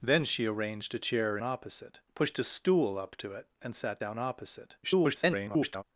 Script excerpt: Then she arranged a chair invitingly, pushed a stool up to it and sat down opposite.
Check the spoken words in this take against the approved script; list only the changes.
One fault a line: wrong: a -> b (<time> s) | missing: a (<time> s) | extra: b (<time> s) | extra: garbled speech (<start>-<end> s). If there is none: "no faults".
wrong: invitingly -> opposite (1.4 s)
extra: garbled speech (4.8-5.8 s)